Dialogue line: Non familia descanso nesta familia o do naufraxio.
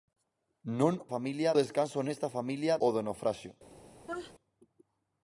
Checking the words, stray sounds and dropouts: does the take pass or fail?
fail